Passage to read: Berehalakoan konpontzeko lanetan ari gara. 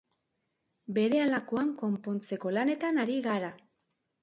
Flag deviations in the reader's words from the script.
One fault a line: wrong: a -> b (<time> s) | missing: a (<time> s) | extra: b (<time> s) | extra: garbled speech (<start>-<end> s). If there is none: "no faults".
no faults